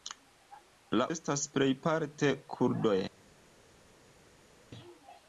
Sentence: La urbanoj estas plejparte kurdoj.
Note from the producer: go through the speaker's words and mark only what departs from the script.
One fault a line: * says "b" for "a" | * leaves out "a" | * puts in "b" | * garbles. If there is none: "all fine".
* leaves out "urbanoj"